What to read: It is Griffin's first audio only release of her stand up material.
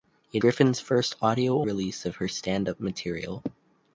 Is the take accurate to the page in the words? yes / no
no